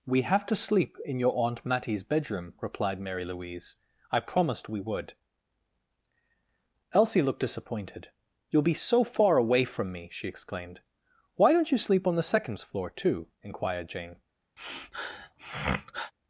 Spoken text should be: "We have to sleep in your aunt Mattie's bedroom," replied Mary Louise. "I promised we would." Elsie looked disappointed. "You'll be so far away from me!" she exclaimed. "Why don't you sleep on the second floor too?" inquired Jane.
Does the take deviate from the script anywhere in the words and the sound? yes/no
yes